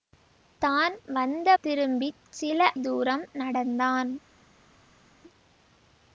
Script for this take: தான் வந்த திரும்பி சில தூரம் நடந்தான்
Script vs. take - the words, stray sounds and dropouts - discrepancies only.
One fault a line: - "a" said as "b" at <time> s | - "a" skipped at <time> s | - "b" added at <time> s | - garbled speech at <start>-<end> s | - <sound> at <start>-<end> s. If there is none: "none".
none